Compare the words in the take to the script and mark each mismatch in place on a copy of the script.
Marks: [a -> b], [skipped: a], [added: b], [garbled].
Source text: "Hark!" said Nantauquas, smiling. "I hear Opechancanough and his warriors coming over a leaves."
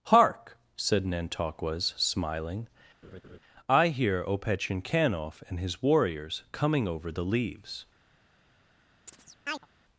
"Hark!" said Nantauquas, smiling. "I hear Opechancanough and his warriors coming over [a -> the] leaves."